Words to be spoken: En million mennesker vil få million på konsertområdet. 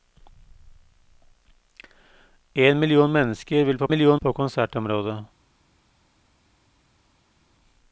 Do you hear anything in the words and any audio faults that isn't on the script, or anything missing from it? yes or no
no